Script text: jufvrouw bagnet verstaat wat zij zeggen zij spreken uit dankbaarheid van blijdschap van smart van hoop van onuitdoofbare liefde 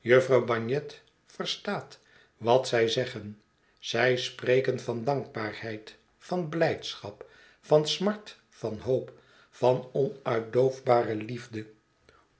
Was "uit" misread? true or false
true